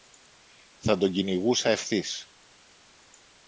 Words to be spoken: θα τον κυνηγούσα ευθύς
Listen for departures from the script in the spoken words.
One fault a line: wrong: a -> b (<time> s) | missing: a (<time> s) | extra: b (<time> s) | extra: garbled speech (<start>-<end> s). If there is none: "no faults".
no faults